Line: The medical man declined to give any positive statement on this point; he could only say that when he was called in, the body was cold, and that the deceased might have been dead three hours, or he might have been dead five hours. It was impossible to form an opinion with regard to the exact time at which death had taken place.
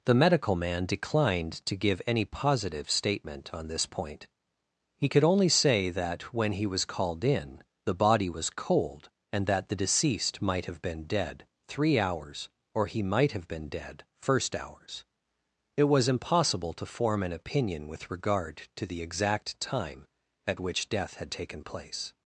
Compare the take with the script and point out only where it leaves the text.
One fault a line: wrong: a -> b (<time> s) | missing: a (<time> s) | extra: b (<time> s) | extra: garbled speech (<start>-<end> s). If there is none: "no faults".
wrong: five -> first (14.2 s)